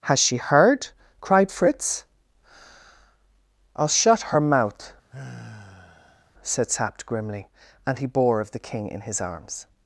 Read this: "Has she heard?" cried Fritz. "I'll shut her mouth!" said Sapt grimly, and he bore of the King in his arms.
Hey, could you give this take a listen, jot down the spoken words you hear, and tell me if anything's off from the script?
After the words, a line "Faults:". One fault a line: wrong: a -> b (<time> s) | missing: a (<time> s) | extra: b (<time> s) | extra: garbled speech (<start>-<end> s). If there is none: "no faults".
"Has she heard?" cried Fritz. "I'll shut her mouth!" said Sapt grimly, and he bore of the King in his arms.
Faults:
no faults